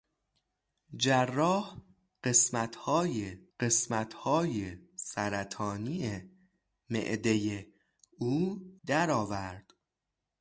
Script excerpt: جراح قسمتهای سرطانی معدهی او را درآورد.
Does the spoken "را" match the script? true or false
false